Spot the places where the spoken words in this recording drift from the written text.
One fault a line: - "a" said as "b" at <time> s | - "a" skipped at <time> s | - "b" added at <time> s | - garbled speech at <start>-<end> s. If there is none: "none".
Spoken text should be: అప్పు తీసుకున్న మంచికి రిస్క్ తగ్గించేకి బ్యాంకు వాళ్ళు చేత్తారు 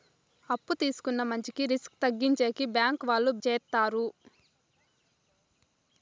none